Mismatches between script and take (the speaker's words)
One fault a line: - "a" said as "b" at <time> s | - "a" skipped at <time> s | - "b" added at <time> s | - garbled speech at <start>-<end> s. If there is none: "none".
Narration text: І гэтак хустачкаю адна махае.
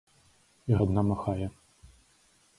- "гэтак хустачкаю" skipped at 0.8 s